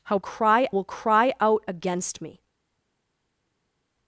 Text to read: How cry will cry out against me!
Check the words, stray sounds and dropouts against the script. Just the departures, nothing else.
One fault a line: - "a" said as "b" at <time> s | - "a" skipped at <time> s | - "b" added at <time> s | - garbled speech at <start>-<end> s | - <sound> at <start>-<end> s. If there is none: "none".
none